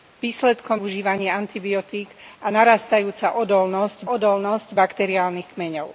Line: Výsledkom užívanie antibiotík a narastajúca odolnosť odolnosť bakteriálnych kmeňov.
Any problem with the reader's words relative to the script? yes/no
no